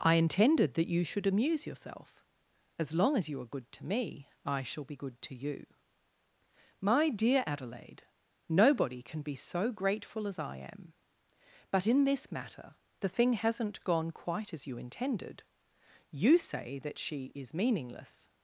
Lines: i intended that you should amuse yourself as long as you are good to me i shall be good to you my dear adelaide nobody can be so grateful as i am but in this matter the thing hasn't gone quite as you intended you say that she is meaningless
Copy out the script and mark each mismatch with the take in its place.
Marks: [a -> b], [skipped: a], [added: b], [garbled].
i intended that you should amuse yourself as long as you are good to me i shall be good to you my dear adelaide nobody can be so grateful as i am but in this matter the thing hasn't gone quite as you intended you say that she is meaningless